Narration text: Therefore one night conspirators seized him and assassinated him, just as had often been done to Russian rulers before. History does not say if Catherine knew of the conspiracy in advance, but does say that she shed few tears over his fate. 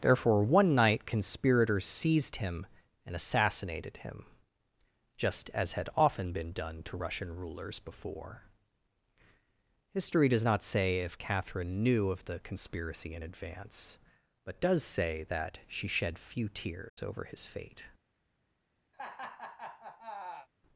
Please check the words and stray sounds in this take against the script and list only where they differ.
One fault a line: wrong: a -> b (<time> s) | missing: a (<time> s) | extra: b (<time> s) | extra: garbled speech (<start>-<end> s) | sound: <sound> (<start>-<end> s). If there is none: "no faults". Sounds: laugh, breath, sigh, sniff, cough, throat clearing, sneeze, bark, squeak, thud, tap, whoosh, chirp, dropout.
sound: dropout (16.9-17.0 s)
sound: laugh (18.9-20.5 s)